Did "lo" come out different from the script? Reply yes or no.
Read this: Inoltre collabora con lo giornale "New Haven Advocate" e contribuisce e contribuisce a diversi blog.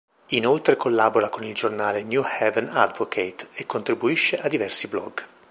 yes